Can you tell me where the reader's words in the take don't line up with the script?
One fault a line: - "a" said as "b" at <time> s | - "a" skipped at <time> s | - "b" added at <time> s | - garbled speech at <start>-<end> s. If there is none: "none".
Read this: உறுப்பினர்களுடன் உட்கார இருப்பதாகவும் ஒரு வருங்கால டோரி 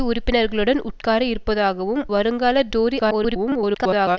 - "ஒரு" skipped at 2.0 s
- garbled speech at 3.0-4.2 s